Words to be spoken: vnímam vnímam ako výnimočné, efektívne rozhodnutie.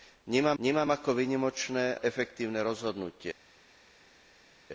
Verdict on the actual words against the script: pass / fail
pass